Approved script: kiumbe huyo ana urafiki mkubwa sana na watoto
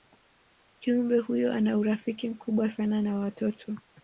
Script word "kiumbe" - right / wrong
right